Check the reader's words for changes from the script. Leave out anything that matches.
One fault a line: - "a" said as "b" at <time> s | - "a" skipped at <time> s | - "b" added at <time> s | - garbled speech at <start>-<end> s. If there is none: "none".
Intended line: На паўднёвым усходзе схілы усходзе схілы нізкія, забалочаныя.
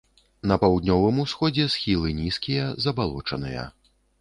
- "усходзе схілы" skipped at 2.1 s